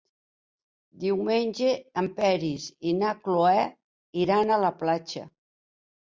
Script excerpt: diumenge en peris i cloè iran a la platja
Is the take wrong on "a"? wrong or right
right